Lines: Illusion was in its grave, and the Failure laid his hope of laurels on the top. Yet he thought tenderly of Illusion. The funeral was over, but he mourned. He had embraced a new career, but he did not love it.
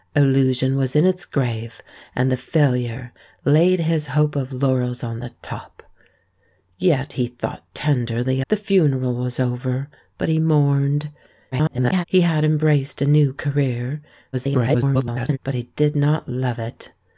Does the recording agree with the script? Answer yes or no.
no